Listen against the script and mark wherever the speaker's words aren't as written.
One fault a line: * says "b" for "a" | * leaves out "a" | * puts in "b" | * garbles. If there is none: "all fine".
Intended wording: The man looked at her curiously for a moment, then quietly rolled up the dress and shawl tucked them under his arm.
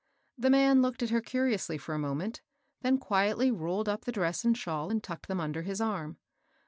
* puts in "and"